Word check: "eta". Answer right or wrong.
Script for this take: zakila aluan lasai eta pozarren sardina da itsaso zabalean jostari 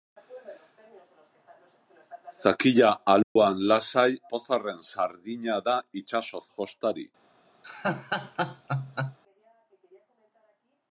wrong